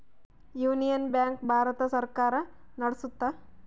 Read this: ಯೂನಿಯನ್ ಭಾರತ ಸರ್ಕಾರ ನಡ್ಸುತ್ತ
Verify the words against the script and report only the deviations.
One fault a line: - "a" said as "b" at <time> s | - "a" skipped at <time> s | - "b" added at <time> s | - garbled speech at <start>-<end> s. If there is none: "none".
- "ಬ್ಯಾಂಕ್" added at 1.1 s